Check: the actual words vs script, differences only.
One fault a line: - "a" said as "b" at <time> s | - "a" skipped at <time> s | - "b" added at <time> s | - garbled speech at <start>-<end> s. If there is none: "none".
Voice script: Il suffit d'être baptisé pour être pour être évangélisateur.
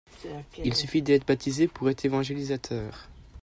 - "pour être" skipped at 2.0 s